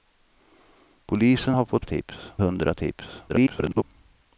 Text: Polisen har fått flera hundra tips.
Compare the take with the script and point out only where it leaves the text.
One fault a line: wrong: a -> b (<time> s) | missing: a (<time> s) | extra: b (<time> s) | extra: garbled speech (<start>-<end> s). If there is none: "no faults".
wrong: flera -> tips (1.8 s)
extra: garbled speech (3.3-3.8 s)